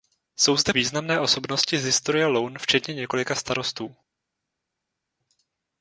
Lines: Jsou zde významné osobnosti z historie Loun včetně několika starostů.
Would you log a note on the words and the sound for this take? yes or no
no